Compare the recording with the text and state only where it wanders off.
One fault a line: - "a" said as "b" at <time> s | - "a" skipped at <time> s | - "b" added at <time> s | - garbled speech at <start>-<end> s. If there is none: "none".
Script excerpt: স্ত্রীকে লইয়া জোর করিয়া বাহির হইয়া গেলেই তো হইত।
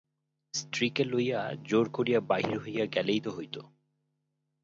none